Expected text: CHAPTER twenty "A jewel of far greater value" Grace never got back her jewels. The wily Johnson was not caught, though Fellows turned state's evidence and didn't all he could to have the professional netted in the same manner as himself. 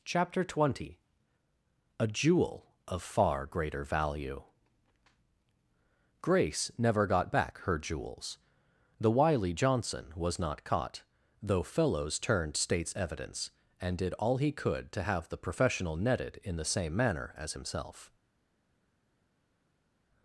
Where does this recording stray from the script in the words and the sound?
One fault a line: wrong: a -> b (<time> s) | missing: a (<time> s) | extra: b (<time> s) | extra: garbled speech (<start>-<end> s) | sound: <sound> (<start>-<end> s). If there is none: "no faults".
wrong: didn't -> did (13.9 s)